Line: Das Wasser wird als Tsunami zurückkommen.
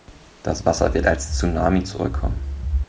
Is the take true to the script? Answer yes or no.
yes